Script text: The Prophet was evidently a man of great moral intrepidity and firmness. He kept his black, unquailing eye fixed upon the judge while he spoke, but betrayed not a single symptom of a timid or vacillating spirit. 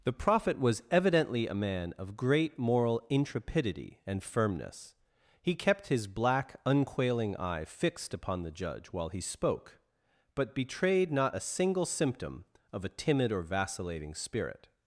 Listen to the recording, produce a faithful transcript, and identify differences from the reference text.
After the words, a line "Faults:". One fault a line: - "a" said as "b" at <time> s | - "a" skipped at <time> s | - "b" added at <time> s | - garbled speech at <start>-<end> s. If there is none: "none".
The Prophet was evidently a man of great moral intrepidity and firmness. He kept his black, unquailing eye fixed upon the judge while he spoke, but betrayed not a single symptom of a timid or vacillating spirit.
Faults:
none